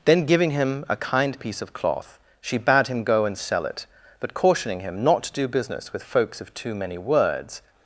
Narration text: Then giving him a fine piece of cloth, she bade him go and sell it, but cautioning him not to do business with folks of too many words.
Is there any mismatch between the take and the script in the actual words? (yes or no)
yes